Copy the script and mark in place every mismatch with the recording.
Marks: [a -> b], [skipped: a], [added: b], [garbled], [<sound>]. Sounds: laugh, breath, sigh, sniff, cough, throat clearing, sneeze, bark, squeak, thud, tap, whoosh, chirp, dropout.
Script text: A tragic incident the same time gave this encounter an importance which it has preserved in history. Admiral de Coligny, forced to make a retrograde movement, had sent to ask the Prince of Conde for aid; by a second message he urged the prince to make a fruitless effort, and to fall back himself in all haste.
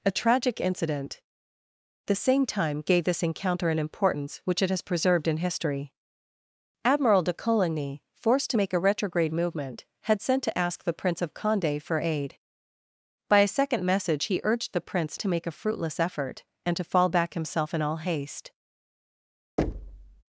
A tragic incident the same time gave this encounter an importance which it has preserved in history. Admiral de Coligny, forced to make a retrograde movement, had sent to ask the Prince of Conde for aid; by a second message he urged the prince to make a fruitless effort, and to fall back himself in all haste. [thud]